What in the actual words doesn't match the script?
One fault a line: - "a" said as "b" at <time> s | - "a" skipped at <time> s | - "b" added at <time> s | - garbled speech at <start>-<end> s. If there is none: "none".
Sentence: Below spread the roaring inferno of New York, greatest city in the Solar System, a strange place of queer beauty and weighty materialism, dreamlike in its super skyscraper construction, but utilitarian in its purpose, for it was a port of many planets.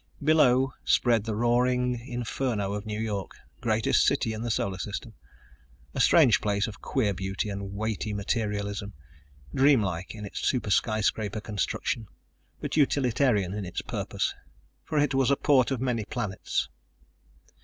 none